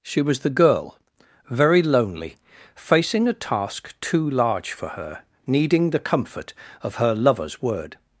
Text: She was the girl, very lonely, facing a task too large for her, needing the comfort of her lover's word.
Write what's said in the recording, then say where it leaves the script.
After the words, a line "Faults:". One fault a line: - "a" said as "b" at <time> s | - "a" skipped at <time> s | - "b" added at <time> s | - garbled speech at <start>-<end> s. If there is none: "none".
She was the girl, very lonely, facing a task too large for her, needing the comfort of her lover's word.
Faults:
none